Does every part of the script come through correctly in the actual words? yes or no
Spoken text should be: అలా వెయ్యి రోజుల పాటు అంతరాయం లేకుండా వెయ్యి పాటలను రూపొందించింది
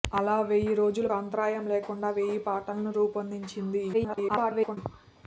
no